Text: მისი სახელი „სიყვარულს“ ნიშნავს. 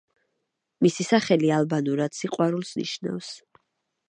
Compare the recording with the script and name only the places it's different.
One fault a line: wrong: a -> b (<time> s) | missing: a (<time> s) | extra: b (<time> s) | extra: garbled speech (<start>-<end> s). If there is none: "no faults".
extra: ალბანურად (1.6 s)